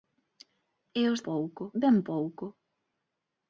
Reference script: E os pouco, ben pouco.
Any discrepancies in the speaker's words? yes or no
no